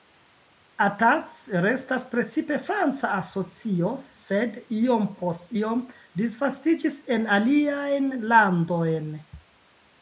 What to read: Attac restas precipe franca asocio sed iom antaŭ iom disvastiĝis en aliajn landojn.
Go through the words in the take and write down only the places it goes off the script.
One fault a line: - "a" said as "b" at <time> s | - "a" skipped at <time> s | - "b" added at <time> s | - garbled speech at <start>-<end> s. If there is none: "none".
- "antaŭ" said as "post" at 5.2 s